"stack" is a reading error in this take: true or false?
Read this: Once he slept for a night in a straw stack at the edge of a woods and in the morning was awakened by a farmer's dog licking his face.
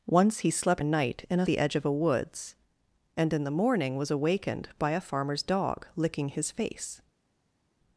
true